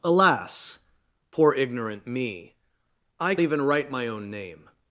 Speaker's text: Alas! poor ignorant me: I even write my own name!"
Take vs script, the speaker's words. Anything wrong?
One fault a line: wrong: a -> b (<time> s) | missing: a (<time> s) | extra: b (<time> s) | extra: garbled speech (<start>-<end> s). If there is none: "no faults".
no faults